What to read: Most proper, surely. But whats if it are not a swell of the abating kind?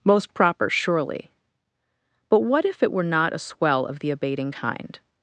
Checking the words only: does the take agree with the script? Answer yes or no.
no